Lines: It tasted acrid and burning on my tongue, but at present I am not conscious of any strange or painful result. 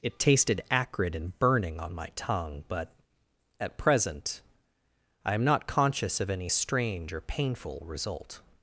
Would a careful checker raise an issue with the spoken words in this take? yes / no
no